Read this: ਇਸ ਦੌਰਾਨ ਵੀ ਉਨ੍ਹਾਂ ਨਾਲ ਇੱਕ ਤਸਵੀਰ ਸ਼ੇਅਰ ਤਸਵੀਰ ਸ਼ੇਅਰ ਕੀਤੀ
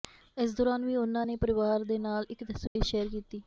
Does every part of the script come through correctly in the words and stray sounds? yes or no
no